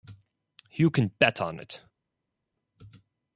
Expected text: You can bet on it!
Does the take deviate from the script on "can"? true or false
false